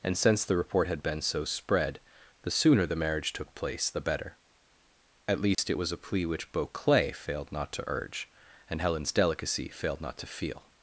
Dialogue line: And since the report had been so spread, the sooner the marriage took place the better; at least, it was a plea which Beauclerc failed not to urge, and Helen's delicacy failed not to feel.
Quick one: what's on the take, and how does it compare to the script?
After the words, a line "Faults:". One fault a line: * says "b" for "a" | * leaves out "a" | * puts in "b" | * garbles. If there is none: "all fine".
And since the report had been so spread, the sooner the marriage took place the better; at least, it was a plea which Beauclerc failed not to urge, and Helen's delicacy failed not to feel.
Faults:
all fine